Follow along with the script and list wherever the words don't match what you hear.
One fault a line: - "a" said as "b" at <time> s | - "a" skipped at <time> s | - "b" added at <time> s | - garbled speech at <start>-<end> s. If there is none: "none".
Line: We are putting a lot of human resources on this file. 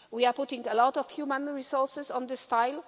none